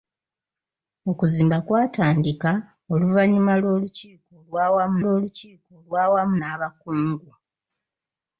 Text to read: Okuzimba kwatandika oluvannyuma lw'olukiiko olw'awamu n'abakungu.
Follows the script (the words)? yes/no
no